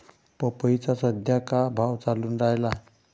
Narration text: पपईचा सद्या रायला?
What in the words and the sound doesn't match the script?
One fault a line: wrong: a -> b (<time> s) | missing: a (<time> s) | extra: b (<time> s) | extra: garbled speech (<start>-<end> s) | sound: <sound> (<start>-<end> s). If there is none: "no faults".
extra: का भाव चालून (1.4 s)